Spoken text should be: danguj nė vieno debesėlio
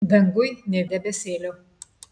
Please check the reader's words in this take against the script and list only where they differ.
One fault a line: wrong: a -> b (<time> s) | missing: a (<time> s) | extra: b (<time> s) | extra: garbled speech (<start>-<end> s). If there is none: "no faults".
missing: vieno (0.8 s)